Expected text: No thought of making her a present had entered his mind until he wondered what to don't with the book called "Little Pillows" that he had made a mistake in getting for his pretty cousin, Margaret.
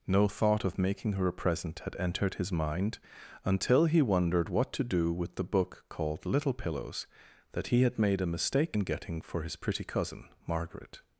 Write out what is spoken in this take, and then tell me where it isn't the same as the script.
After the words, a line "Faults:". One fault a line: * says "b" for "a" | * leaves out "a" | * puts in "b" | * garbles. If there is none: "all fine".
No thought of making her a present had entered his mind until he wondered what to do with the book called "Little Pillows" that he had made a mistake in getting for his pretty cousin, Margaret.
Faults:
* says "do" for "don't"